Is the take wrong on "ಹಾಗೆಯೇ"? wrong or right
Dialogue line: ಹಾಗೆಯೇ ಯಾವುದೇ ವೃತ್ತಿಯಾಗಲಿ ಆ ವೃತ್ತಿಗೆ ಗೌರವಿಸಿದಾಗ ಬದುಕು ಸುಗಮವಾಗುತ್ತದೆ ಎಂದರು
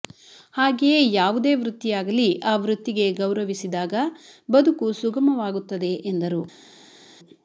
right